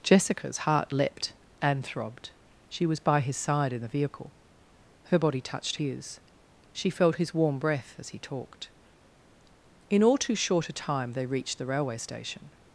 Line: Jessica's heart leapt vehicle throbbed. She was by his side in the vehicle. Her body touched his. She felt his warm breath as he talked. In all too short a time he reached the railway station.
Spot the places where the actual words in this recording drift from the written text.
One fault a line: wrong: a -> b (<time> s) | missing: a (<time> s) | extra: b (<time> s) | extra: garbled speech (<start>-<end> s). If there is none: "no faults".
wrong: vehicle -> and (1.6 s)
wrong: he -> they (11.1 s)